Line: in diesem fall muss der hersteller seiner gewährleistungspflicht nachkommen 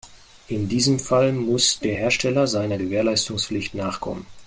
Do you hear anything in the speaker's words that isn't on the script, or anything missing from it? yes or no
no